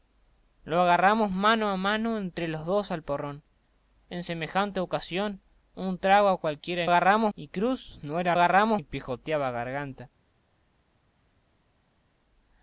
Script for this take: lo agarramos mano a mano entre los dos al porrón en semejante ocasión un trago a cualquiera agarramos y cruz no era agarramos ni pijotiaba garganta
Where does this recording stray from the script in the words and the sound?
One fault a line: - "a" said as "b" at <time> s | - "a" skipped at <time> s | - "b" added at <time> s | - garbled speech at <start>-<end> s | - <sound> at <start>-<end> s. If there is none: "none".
none